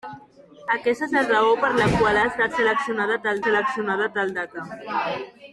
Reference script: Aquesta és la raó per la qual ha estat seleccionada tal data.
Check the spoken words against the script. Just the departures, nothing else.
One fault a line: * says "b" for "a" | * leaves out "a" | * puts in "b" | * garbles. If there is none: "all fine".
* puts in "seleccionada tal"